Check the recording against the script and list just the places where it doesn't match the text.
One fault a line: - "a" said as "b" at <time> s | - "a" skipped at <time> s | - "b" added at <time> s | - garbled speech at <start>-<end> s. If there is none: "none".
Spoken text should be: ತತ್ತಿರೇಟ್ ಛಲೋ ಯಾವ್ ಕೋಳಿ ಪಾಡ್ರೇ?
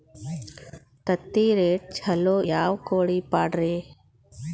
none